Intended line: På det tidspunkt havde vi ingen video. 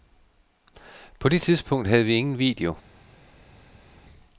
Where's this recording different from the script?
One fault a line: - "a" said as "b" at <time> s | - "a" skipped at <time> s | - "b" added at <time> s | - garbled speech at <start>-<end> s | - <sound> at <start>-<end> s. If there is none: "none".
none